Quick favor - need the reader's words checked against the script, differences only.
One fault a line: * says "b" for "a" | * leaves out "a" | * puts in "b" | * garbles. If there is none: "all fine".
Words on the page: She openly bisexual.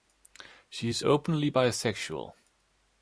* puts in "is"